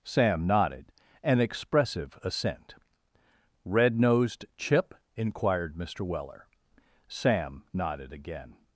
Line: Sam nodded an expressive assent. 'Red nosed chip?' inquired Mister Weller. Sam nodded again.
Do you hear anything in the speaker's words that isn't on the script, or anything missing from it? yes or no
no